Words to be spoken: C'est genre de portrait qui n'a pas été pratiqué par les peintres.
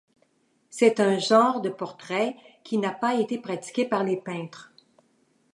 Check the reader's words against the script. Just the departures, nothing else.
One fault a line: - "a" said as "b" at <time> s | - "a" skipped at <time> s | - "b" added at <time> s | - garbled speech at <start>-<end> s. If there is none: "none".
- "un" added at 1.0 s